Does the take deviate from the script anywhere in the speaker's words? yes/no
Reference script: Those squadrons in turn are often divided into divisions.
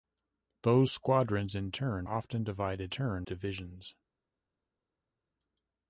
yes